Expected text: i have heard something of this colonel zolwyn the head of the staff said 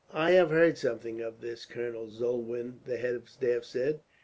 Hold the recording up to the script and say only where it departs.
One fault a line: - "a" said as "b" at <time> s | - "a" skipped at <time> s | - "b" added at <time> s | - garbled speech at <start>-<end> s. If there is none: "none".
none